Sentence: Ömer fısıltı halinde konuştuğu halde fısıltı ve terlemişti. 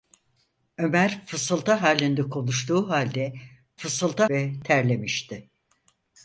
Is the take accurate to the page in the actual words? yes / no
yes